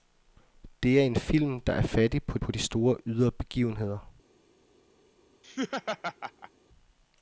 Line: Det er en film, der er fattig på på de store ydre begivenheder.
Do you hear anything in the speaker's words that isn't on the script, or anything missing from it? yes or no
no